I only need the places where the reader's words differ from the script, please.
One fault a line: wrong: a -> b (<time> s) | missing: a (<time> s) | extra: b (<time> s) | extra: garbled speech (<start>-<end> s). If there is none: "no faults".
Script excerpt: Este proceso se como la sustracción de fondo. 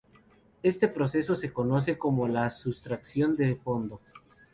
extra: conoce (1.5 s)